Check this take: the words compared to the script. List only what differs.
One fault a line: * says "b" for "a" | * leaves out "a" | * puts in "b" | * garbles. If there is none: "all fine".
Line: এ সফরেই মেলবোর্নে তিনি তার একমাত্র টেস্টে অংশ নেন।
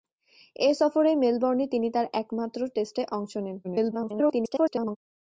* garbles